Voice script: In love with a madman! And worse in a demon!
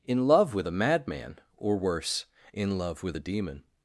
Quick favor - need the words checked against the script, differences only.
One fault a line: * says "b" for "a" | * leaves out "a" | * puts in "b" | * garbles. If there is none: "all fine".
* says "Or" for "And"
* puts in "love with"